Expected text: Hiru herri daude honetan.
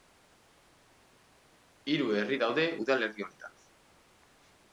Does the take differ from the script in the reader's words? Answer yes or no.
yes